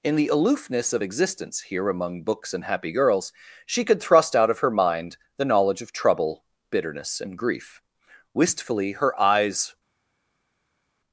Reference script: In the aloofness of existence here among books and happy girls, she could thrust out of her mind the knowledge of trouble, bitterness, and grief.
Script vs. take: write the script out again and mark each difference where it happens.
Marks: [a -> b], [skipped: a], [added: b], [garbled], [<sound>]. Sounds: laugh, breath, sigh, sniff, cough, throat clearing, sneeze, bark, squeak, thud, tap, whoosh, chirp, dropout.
In the aloofness of existence here among books and happy girls, she could thrust out of her mind the knowledge of trouble, bitterness, and grief. [added: Wistfully her eyes]